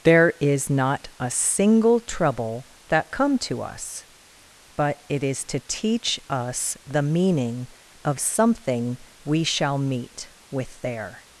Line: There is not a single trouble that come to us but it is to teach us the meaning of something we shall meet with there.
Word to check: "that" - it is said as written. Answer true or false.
true